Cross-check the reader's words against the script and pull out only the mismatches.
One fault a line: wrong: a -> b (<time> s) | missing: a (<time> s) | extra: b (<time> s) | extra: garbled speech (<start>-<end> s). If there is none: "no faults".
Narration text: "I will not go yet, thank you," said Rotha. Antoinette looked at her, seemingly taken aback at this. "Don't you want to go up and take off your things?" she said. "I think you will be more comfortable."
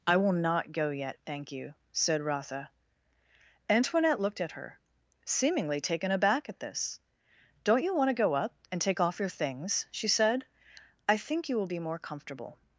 no faults